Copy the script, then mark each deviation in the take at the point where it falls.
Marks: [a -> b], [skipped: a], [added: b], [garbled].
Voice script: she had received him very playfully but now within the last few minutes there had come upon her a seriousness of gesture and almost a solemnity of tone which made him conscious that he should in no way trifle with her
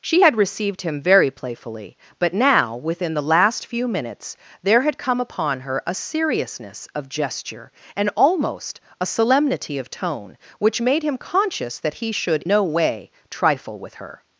she had received him very playfully but now within the last few minutes there had come upon her a seriousness of gesture and almost a solemnity of tone which made him conscious that he should [skipped: in] no way trifle with her